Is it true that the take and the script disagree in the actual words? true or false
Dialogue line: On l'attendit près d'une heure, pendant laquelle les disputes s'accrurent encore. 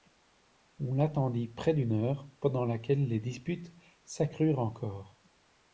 false